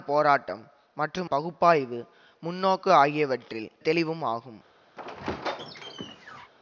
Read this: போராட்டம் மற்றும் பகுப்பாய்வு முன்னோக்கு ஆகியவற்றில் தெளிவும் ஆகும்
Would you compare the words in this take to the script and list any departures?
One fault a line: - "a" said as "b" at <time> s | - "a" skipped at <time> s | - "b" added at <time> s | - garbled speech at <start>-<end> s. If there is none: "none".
none